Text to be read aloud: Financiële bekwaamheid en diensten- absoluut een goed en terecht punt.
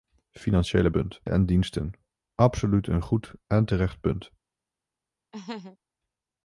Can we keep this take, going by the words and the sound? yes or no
no